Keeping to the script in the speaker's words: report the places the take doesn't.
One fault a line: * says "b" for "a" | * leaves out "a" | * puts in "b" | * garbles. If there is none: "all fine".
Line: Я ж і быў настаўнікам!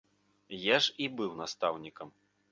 all fine